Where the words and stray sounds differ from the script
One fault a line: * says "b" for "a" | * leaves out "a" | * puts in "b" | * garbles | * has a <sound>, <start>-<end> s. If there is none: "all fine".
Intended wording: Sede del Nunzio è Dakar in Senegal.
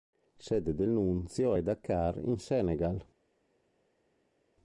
all fine